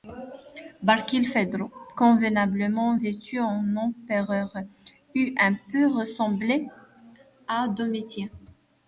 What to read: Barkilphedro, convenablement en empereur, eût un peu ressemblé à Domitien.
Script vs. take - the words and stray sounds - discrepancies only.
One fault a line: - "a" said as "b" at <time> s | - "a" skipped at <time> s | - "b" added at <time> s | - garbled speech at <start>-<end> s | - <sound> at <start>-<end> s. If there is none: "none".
- "vêtu" added at 3.0 s